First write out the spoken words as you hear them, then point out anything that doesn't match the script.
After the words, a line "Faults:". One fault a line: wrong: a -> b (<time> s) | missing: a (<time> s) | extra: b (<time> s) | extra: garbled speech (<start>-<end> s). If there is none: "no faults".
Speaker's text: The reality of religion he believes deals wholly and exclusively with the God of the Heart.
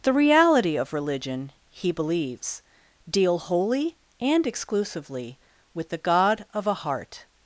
The reality of religion he believes deal wholly and exclusively with the God of a Heart.
Faults:
wrong: deals -> deal (3.1 s)
wrong: the -> a (6.7 s)